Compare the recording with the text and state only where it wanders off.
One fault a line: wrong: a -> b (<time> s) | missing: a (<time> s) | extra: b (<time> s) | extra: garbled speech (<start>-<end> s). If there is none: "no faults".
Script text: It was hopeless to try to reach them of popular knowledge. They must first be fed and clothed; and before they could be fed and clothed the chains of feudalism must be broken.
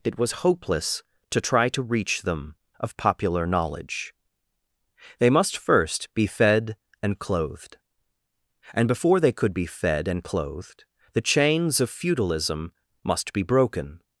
no faults